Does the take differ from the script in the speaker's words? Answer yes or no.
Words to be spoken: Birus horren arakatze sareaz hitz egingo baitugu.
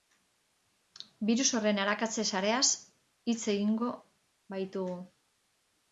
no